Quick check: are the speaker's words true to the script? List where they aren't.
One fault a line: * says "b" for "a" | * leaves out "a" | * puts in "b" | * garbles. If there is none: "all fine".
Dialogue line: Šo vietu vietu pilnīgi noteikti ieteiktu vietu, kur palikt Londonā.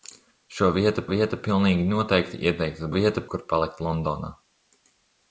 all fine